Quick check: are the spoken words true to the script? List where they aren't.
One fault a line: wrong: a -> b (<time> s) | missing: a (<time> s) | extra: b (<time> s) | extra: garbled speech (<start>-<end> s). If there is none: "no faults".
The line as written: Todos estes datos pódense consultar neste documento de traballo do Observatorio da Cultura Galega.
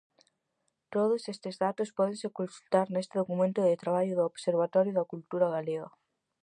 no faults